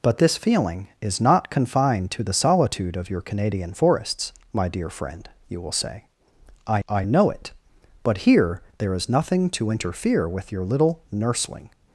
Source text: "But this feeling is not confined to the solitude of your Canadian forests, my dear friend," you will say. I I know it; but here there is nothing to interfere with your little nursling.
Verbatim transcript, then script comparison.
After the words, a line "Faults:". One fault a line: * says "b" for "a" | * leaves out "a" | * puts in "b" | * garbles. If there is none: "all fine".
"But this feeling is not confined to the solitude of your Canadian forests, my dear friend," you will say. I I know it; but here there is nothing to interfere with your little nursling.
Faults:
all fine